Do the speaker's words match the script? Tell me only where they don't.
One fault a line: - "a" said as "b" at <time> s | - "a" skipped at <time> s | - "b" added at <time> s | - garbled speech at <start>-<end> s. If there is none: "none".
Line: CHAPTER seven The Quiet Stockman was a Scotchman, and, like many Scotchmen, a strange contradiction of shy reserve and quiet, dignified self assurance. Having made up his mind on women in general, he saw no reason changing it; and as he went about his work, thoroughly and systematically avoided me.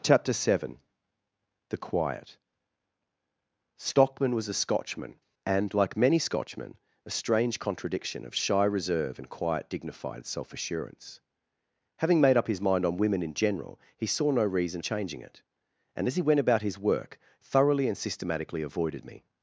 none